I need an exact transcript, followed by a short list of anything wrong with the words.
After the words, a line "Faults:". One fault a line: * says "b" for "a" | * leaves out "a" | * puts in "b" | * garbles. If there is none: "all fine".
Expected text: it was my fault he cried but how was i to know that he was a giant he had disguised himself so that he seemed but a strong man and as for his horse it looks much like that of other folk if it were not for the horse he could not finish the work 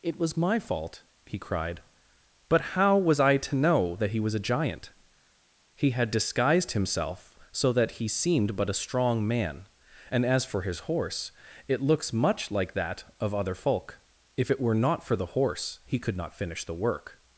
it was my fault he cried but how was i to know that he was a giant he had disguised himself so that he seemed but a strong man and as for his horse it looks much like that of other folk if it were not for the horse he could not finish the work
Faults:
all fine